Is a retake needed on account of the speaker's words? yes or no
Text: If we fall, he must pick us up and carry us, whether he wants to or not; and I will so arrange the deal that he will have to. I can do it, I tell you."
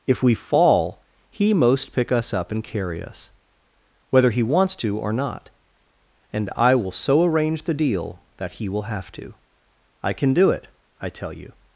yes